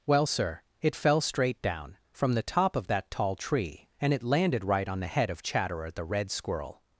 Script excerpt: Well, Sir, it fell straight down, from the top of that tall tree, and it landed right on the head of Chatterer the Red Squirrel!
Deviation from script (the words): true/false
false